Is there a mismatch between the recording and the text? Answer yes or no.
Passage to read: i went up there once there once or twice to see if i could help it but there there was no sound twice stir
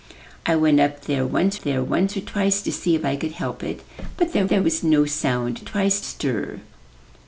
no